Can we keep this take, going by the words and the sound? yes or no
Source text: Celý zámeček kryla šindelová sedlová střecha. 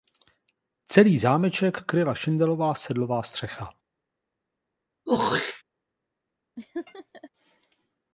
no